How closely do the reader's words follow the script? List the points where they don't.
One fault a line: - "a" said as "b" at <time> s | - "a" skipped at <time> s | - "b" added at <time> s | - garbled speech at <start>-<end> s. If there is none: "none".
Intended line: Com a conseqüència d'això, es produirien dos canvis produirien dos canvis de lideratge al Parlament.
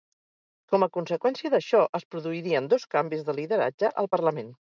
- "produirien dos canvis" skipped at 3.2 s